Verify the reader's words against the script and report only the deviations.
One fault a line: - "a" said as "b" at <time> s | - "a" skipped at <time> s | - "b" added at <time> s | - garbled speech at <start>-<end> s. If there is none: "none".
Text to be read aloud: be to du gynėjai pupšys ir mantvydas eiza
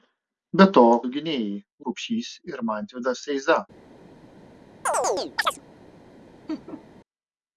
none